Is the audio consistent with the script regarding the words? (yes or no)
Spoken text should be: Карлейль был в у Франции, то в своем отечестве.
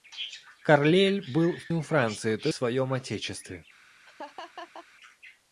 yes